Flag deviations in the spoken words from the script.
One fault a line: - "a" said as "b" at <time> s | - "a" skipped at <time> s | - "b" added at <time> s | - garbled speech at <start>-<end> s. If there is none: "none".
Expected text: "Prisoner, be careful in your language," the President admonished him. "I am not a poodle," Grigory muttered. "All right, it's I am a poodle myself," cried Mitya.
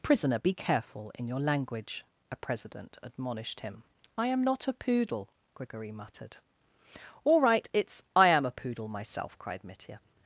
- "the" said as "a" at 2.3 s